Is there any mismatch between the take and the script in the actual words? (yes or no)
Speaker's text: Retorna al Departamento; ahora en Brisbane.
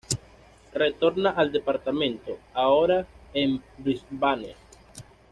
no